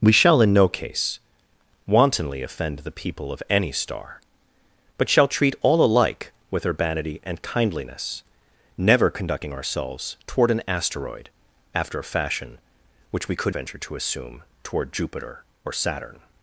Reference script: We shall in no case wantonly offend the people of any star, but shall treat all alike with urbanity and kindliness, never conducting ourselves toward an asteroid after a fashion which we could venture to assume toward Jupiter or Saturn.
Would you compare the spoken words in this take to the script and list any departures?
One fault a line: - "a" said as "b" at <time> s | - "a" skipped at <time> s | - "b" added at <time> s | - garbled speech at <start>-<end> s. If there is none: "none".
none